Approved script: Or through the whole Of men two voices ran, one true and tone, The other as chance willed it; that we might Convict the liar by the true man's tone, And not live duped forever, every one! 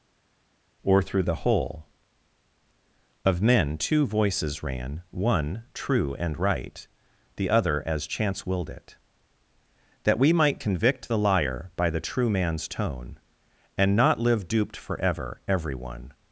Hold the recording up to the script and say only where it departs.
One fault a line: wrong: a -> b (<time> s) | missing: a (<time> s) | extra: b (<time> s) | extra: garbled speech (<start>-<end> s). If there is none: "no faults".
wrong: tone -> right (6.4 s)